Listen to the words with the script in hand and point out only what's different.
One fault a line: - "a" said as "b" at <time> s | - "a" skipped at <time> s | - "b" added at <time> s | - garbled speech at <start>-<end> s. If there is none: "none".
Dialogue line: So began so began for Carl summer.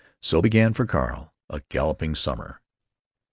- "so began for Carl" said as "for Carl a galloping" at 0.7 s